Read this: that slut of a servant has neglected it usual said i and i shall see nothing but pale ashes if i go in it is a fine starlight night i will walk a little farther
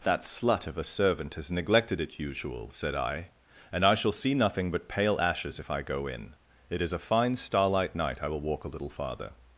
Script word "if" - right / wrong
right